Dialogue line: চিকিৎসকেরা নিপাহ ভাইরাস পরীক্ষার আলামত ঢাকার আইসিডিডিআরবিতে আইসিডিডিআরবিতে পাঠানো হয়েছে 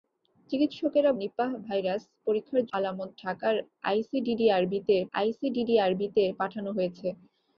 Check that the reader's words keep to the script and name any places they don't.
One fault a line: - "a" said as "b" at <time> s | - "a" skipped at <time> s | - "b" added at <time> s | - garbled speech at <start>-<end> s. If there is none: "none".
none